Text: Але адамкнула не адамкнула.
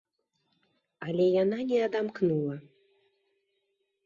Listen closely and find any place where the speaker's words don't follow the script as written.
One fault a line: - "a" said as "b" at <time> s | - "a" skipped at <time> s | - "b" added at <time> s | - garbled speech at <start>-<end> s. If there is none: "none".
- "адамкнула" said as "яна" at 1.4 s